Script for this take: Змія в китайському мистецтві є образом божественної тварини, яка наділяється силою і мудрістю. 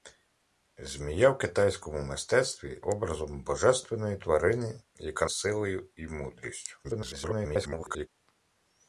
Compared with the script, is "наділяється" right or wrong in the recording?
wrong